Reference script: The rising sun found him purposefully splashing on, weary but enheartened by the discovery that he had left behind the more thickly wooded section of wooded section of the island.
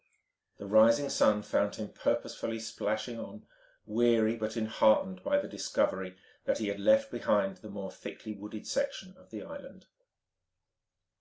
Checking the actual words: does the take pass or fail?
fail